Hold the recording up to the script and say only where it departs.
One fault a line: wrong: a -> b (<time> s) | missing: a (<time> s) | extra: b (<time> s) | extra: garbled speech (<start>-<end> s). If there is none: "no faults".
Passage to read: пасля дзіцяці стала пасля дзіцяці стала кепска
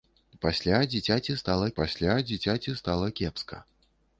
no faults